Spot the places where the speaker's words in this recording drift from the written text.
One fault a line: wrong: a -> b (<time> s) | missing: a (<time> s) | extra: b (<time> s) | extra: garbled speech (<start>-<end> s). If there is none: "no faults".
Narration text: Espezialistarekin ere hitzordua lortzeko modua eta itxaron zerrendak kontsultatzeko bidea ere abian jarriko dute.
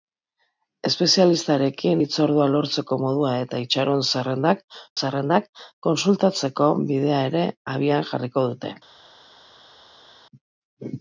missing: ere (2.0 s)
extra: zerrendak (5.0 s)